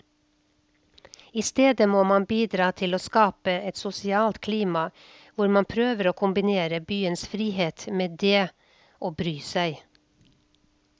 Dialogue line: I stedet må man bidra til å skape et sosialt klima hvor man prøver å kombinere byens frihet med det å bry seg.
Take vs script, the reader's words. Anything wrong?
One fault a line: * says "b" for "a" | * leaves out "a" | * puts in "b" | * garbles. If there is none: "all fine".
all fine